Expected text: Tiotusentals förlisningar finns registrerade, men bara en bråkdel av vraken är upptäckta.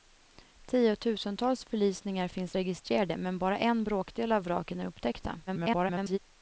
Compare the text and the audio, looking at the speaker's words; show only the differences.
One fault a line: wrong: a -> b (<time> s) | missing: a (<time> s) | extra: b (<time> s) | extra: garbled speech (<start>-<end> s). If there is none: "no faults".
extra: garbled speech (5.5-6.2 s)